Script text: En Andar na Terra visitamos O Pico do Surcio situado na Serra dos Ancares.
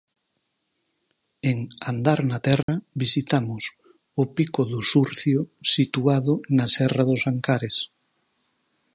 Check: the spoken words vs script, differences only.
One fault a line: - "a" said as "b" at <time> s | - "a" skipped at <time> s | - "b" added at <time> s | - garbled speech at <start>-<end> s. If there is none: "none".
none